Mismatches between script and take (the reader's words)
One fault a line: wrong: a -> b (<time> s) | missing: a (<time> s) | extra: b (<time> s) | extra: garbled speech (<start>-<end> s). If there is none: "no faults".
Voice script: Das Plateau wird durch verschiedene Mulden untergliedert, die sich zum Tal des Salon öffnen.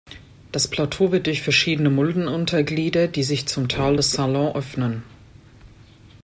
no faults